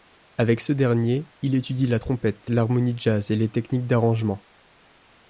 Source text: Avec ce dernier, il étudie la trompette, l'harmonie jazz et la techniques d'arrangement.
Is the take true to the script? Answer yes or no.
no